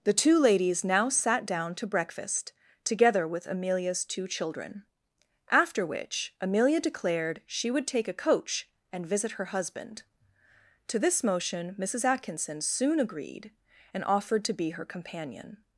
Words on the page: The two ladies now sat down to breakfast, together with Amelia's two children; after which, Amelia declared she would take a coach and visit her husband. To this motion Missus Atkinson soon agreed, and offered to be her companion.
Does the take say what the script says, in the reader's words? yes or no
yes